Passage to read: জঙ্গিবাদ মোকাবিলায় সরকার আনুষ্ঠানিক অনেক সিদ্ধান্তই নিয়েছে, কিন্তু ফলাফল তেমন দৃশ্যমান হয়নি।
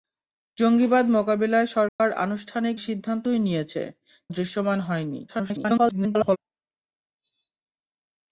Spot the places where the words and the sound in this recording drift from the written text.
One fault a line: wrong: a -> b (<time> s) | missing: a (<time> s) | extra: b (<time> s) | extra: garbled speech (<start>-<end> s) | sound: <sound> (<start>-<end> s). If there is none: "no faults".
sound: dropout (1.9-2.0 s)
missing: অনেক (2.8 s)
missing: কিন্তু ফলাফল তেমন (3.8 s)
extra: garbled speech (5.3-6.4 s)